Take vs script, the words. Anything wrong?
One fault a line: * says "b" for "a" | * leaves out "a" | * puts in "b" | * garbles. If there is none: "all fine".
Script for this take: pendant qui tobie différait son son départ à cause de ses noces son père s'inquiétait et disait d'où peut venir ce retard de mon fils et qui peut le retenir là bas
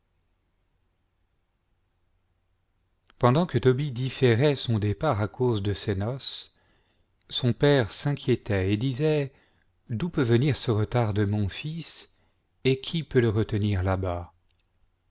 * says "que" for "qui"
* leaves out "son"